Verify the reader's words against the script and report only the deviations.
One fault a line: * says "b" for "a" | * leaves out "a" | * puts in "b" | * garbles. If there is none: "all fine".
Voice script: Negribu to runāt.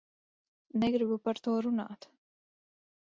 * puts in "par"